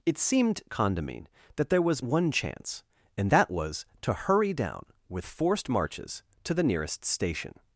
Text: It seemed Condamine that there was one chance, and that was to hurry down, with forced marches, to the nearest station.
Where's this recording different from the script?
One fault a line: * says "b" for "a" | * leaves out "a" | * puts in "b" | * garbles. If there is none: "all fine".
all fine